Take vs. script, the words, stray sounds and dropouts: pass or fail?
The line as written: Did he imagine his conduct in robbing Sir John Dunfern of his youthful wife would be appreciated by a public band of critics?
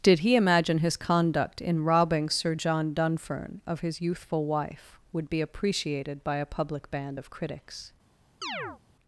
fail